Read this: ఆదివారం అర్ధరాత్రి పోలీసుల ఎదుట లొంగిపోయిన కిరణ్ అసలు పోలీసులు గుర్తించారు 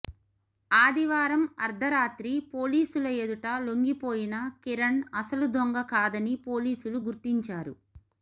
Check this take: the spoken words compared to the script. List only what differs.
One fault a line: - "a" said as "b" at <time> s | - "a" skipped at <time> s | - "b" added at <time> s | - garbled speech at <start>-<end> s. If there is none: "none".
- "దొంగ కాదని" added at 5.5 s